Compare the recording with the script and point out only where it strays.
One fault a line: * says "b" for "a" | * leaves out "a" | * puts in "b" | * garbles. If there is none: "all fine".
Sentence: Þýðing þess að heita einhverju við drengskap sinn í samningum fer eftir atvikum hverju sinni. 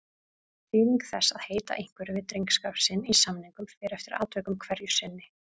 all fine